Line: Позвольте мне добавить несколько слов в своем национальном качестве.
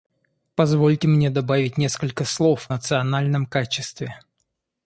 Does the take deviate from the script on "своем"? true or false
true